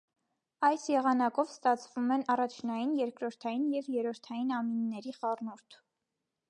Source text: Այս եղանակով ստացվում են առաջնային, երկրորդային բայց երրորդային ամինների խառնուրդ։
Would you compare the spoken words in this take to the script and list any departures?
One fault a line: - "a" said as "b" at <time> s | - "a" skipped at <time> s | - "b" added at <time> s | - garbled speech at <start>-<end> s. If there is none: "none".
- "բայց" said as "և" at 3.8 s